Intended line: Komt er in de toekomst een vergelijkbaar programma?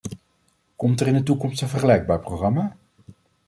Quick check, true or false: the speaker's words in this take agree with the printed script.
true